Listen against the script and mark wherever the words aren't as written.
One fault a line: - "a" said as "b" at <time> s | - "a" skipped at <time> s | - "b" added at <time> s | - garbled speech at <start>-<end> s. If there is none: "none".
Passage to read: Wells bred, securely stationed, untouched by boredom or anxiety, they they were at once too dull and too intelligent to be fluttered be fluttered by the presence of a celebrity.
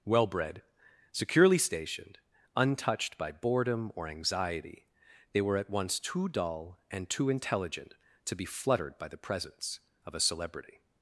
- "Wells" said as "Well" at 0.0 s
- "they" skipped at 5.4 s
- "be fluttered" skipped at 9.0 s